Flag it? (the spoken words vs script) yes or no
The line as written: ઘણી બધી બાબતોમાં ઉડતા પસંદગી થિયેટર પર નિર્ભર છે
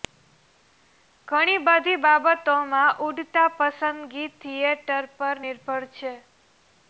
no